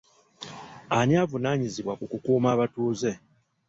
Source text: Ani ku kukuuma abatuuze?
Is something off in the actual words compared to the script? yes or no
yes